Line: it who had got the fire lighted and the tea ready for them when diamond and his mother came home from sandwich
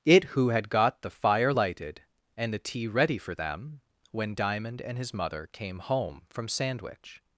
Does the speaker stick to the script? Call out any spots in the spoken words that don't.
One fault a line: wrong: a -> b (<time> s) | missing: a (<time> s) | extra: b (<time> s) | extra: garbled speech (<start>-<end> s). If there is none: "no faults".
no faults